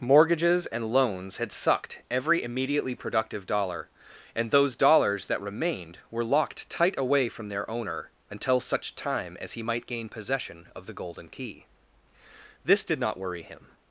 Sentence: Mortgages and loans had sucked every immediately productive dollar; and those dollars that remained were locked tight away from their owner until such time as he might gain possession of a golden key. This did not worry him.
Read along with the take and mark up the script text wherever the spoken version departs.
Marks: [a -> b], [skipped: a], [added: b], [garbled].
Mortgages and loans had sucked every immediately productive dollar; and those dollars that remained were locked tight away from their owner until such time as he might gain possession of [a -> the] golden key. This did not worry him.